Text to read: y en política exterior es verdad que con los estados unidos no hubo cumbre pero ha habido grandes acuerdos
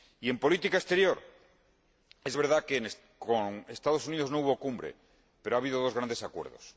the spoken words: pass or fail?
fail